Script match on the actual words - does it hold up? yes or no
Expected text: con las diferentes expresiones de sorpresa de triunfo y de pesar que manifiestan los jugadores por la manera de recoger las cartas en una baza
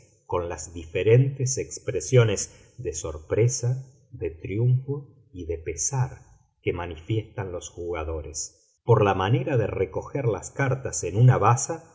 yes